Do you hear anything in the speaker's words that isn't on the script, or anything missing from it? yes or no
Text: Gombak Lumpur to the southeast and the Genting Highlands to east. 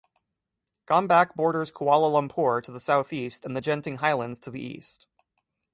yes